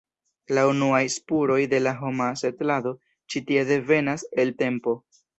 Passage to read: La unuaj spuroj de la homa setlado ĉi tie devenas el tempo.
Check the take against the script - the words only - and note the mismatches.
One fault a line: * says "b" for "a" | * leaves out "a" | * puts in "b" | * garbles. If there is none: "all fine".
all fine